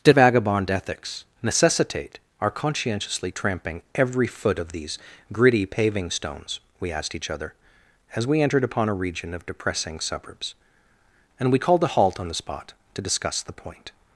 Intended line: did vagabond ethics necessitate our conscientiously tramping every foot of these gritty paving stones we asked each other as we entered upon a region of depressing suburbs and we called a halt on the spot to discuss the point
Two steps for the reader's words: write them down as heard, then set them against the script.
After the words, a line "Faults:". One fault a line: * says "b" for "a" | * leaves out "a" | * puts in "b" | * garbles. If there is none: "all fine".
did vagabond ethics necessitate our conscientiously tramping every foot of these gritty paving stones we asked each other as we entered upon a region of depressing suburbs and we called a halt on the spot to discuss the point
Faults:
all fine